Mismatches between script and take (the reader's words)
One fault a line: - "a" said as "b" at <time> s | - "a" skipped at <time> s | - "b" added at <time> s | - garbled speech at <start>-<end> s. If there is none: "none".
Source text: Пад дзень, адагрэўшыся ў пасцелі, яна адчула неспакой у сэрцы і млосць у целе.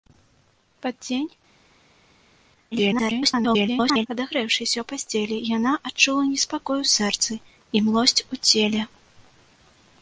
- garbled speech at 2.7-4.1 s